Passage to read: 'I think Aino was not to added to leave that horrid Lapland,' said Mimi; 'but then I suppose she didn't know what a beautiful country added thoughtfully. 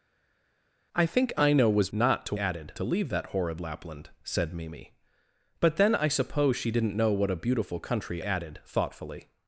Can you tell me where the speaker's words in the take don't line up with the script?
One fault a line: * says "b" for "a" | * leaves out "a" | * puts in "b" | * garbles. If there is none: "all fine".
all fine